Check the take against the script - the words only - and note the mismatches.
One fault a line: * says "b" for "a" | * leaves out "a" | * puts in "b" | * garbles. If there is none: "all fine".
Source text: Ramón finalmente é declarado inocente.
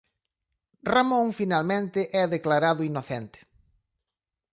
all fine